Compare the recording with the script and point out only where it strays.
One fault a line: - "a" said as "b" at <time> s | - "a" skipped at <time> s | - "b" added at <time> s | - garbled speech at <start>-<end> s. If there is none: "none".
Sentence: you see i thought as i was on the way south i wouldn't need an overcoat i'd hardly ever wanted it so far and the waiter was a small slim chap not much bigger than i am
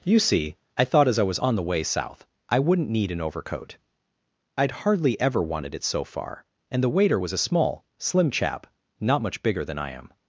none